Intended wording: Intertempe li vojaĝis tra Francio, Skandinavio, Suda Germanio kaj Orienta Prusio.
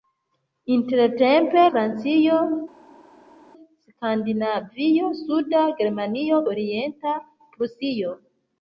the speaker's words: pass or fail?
fail